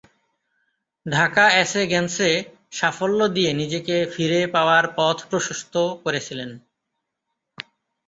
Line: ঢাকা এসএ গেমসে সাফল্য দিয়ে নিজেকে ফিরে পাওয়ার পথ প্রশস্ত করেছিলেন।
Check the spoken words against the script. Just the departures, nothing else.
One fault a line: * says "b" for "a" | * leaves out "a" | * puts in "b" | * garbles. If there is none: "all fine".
all fine